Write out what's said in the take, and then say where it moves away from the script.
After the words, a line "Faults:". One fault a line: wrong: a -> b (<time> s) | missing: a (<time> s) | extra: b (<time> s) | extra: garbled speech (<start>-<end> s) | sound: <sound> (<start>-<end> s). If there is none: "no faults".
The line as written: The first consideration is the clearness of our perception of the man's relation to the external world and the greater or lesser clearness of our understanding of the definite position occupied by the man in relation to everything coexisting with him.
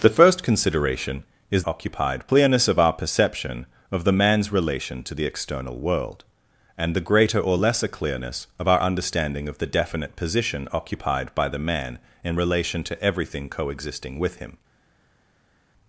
The first consideration is occupied clearness of our perception of the man's relation to the external world and the greater or lesser clearness of our understanding of the definite position occupied by the man in relation to everything coexisting with him.
Faults:
wrong: the -> occupied (1.6 s)